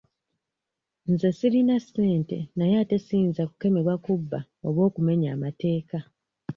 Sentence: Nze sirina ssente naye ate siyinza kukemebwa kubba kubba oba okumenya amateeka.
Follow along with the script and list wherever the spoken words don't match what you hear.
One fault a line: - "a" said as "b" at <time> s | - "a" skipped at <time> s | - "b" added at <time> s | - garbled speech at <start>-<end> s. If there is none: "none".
- "kubba" skipped at 4.4 s